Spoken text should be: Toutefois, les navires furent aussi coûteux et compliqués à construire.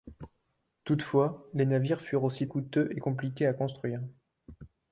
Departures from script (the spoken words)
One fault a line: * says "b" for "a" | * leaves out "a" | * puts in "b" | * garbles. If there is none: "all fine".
all fine